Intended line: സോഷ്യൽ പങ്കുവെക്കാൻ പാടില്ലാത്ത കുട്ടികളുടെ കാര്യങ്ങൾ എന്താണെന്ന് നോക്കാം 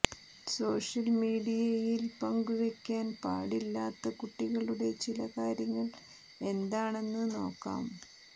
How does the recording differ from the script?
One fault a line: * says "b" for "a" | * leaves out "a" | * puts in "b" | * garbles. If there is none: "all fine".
* puts in "മീഡിയയിൽ"
* puts in "ചില"